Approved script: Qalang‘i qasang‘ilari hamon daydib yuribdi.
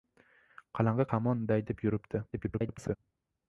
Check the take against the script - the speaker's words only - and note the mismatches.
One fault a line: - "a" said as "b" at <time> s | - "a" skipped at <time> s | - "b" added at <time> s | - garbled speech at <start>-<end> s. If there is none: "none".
- "qasang‘ilari" skipped at 1.1 s
- garbled speech at 2.3-3.0 s